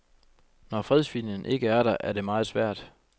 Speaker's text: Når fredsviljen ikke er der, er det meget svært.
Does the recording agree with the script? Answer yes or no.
yes